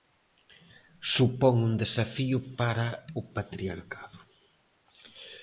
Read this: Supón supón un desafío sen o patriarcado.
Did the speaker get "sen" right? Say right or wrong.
wrong